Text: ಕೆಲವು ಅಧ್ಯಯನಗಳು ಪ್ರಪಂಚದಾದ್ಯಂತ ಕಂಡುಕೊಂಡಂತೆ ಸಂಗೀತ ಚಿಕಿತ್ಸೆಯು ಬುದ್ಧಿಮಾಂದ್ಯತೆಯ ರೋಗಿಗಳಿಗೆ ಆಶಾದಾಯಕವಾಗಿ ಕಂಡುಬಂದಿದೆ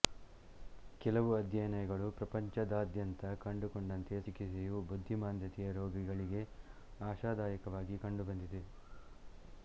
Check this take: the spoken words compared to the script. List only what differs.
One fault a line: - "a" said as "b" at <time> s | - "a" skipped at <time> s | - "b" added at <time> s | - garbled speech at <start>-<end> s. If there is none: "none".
- "ಸಂಗೀತ" skipped at 4.2 s